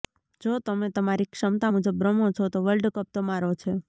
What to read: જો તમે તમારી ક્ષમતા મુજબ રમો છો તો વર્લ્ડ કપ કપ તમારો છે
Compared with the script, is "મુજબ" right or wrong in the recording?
right